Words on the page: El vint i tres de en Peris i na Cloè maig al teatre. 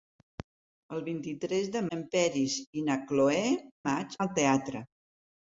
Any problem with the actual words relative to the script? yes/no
no